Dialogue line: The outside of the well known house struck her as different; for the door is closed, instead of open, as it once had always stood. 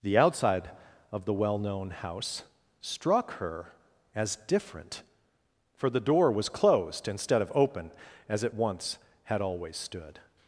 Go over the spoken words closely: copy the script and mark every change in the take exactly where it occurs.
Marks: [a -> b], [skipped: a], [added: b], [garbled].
The outside of the well known house struck her as different; for the door [is -> was] closed, instead of open, as it once had always stood.